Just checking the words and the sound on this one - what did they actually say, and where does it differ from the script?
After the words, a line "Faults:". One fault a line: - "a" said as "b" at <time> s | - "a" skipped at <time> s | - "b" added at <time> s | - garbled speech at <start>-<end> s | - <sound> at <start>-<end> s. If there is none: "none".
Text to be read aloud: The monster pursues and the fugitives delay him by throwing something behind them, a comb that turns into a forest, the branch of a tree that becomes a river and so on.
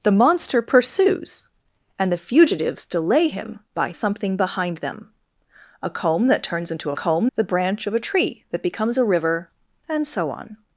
The monster pursues and the fugitives delay him by something behind them, a comb that turns into a comb, the branch of a tree that becomes a river and so on.
Faults:
- "throwing" skipped at 3.9 s
- "forest" said as "comb" at 6.9 s